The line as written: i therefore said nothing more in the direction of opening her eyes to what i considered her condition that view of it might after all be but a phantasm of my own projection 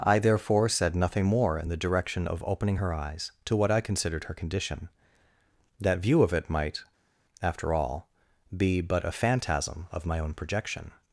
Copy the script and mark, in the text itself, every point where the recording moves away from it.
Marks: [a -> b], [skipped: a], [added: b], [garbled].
i therefore said nothing more in the direction of opening her eyes to what i considered her condition that view of it might after all be but a phantasm of my own projection